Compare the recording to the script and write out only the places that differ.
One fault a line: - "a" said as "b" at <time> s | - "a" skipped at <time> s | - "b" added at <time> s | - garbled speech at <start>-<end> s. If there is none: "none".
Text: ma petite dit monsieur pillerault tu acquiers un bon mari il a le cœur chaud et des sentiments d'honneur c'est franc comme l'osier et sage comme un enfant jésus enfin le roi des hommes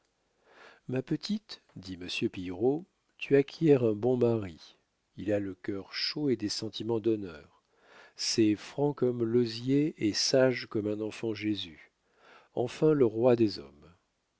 none